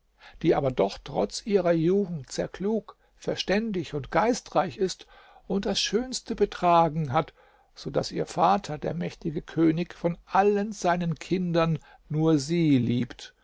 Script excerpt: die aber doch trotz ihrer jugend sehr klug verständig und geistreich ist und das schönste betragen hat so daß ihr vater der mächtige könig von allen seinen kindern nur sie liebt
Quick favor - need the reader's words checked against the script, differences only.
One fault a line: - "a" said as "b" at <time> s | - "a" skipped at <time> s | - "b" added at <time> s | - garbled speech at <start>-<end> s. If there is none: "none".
none